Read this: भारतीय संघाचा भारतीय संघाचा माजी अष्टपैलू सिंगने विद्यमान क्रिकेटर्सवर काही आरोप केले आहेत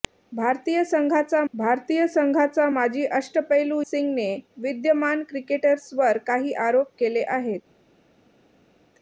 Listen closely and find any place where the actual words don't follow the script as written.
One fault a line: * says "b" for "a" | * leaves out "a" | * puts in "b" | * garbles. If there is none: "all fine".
all fine